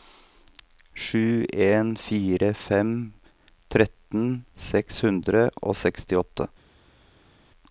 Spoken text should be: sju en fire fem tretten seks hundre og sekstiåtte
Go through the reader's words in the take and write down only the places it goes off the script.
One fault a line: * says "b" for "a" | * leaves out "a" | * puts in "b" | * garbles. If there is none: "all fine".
all fine